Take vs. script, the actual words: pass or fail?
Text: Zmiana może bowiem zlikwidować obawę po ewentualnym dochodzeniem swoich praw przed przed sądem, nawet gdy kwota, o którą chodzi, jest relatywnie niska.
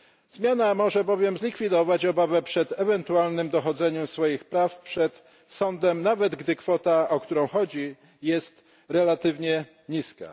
fail